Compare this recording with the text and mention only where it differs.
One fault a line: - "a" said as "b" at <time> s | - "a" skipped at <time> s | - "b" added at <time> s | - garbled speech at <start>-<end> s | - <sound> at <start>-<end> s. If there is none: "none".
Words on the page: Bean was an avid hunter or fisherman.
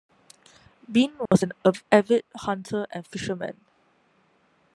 - dropout at 1.3-1.3 s
- "or" said as "and" at 2.9 s